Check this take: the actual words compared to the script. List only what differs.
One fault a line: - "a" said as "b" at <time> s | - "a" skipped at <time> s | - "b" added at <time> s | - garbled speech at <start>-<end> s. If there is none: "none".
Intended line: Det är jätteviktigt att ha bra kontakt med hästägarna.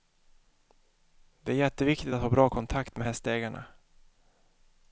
none